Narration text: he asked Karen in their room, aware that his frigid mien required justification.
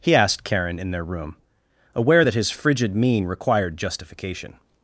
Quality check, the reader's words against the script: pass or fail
pass